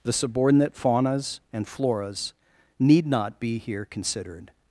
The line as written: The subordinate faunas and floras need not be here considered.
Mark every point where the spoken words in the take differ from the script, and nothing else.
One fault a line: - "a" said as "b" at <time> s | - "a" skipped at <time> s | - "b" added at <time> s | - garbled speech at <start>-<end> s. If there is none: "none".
none